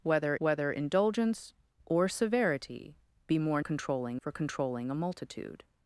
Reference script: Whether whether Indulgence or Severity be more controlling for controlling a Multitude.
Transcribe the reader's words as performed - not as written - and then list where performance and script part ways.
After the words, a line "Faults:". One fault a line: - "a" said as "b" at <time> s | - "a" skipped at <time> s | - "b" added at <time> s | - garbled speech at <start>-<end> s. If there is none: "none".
Whether whether Indulgence or Severity be more controlling for controlling a Multitude.
Faults:
none